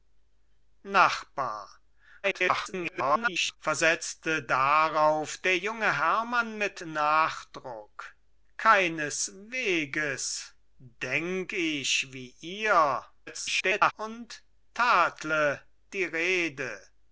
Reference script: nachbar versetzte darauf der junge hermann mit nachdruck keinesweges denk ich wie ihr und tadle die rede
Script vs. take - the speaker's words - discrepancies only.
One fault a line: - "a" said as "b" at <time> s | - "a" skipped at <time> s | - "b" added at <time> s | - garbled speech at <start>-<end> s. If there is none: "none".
- garbled speech at 2.2-3.6 s
- garbled speech at 13.3-13.9 s